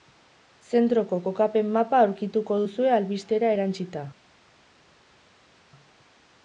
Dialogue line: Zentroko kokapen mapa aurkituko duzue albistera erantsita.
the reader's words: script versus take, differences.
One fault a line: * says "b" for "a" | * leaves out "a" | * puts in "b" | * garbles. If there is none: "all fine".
all fine